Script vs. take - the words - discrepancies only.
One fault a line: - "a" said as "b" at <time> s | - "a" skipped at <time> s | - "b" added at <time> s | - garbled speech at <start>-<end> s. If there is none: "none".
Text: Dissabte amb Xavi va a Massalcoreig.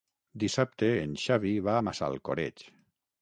- "amb" said as "en" at 1.0 s